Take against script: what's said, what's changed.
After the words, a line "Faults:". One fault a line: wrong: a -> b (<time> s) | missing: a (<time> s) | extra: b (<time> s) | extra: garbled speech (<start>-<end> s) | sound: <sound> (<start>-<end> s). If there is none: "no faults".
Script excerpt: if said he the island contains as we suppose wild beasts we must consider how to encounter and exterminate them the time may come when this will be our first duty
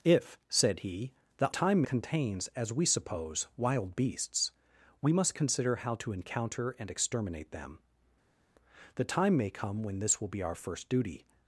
if said he the time contains as we suppose wild beasts we must consider how to encounter and exterminate them the time may come when this will be our first duty
Faults:
wrong: island -> time (1.5 s)